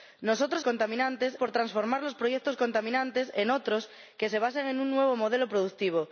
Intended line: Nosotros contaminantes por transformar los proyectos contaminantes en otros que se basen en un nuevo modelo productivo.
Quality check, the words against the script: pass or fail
pass